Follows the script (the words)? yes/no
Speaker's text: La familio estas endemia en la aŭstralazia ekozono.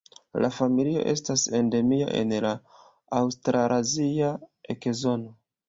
yes